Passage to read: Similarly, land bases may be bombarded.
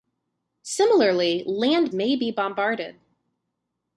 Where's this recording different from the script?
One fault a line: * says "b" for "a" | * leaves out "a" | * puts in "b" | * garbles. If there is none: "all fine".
* leaves out "bases"